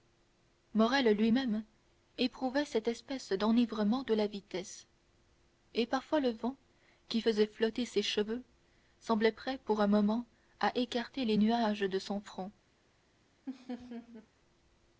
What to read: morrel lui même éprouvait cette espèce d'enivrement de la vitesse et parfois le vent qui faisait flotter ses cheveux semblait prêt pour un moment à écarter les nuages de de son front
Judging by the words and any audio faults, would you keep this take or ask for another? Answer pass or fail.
fail